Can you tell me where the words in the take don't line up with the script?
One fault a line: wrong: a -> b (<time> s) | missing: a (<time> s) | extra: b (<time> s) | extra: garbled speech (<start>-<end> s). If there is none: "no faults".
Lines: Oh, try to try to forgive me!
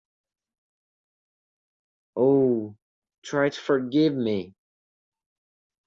missing: try to (3.6 s)